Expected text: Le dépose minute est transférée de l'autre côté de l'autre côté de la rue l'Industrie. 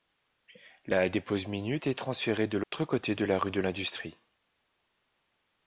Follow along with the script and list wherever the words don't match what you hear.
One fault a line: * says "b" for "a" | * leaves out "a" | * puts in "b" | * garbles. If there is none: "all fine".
* says "La" for "Le"
* says "la rue" for "l'autre côté"
* leaves out "la rue"